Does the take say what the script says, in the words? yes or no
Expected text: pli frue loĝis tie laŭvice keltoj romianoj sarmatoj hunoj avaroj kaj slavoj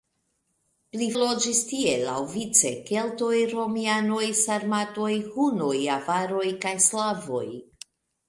no